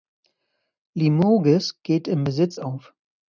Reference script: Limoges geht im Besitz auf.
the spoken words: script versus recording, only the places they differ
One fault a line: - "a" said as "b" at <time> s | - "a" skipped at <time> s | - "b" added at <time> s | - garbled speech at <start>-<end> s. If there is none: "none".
none